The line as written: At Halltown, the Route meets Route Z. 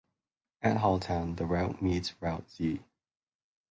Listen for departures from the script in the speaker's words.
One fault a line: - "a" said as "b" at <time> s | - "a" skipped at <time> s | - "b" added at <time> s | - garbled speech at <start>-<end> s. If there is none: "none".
none